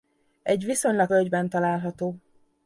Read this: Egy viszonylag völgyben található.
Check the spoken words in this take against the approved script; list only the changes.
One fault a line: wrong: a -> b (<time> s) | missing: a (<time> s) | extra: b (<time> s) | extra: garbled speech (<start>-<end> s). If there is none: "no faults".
no faults